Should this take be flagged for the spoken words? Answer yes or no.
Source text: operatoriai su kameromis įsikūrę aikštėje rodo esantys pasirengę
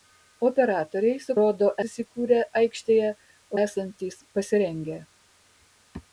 yes